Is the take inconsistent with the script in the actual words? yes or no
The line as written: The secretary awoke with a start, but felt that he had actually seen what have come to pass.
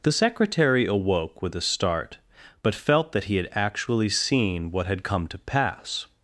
yes